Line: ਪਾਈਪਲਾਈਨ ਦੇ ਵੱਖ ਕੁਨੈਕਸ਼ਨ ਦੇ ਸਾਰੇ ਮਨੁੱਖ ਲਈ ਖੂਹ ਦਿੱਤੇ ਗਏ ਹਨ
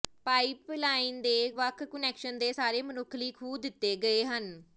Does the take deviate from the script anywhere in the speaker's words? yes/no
no